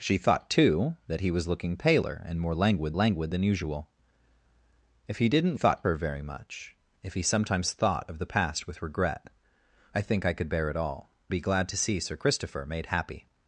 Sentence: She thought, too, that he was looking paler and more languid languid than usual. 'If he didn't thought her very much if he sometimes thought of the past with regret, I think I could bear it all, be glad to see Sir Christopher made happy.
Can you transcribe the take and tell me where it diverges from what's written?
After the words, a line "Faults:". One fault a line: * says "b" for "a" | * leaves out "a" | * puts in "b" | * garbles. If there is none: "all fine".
She thought, too, that he was looking paler and more languid languid than usual. 'If he didn't thought her very much if he sometimes thought of the past with regret, I think I could bear it all, be glad to see Sir Christopher made happy.
Faults:
all fine